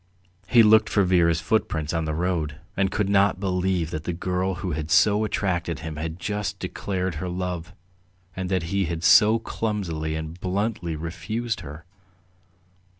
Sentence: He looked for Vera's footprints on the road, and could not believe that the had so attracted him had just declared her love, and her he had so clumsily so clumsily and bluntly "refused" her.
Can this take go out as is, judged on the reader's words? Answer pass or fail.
fail